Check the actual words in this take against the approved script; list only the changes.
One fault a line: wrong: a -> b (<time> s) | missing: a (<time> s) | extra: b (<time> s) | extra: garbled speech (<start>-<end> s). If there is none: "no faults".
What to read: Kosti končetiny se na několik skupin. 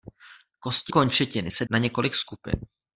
no faults